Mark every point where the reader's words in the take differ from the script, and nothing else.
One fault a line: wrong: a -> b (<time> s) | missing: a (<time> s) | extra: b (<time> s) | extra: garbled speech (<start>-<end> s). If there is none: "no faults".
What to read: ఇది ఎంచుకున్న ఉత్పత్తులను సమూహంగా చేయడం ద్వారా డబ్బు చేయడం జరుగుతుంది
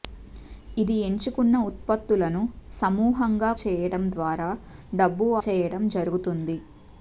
no faults